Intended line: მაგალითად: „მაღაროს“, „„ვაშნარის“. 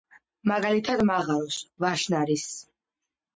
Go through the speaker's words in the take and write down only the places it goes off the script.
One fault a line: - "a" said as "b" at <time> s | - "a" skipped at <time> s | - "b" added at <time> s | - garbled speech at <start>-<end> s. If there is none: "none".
none